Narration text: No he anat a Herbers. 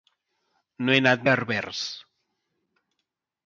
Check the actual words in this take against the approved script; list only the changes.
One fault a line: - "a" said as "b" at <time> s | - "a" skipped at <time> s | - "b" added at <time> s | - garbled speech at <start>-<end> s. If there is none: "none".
none